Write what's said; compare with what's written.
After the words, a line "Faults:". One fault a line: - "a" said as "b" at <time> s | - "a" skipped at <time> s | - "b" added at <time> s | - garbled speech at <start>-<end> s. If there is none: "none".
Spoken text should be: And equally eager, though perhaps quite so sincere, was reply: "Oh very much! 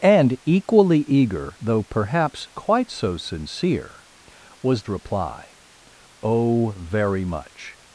And equally eager, though perhaps quite so sincere, was reply: "Oh very much!
Faults:
none